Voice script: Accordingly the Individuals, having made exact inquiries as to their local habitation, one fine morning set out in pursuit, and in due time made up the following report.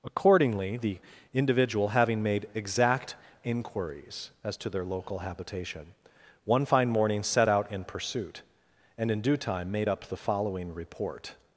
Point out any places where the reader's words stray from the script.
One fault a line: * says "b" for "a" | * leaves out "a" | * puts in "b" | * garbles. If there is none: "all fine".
* says "Individual" for "Individuals"